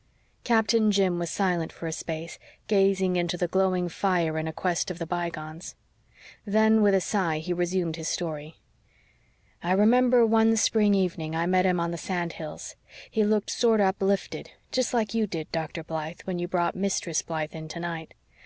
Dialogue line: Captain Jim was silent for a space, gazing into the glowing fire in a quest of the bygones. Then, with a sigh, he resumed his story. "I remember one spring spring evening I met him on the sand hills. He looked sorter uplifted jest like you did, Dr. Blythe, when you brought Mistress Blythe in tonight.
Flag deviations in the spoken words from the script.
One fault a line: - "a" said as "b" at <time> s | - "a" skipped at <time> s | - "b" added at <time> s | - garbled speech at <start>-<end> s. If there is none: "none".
- "spring" skipped at 10.9 s